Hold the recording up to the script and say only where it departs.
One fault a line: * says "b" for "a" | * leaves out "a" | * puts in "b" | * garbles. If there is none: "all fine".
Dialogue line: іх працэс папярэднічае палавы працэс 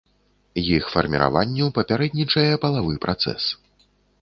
* says "фарміраванню" for "працэс"